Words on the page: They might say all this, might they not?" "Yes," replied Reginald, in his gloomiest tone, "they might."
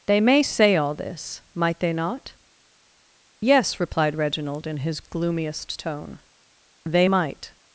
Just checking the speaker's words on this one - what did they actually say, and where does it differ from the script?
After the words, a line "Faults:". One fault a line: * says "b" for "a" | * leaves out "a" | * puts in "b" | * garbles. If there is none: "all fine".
They may say all this, might they not?" "Yes," replied Reginald, in his gloomiest tone, "they might."
Faults:
* says "may" for "might"